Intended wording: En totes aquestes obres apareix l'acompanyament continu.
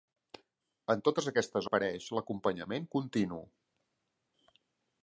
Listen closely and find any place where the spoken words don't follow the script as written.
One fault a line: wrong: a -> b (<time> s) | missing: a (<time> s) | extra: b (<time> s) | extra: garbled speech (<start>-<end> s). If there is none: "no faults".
missing: obres (1.7 s)